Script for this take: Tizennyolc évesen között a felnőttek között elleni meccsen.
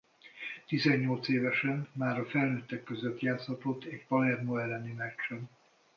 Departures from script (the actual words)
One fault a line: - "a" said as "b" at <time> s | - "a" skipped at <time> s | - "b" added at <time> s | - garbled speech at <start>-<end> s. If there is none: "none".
- "között" said as "már" at 1.9 s
- "játszhatott egy Palermo" added at 3.2 s